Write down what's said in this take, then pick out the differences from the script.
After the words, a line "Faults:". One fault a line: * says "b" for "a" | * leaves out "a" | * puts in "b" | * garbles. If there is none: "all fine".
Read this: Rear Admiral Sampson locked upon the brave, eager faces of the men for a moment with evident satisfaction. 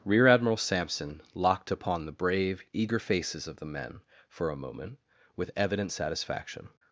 Rear Admiral Sampson locked upon the brave, eager faces of the men for a moment with evident satisfaction.
Faults:
all fine